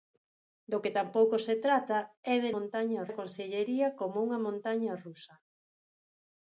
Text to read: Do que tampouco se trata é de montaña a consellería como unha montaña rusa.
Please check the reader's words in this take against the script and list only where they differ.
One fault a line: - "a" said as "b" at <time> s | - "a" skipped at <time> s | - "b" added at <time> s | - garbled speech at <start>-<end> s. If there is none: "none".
none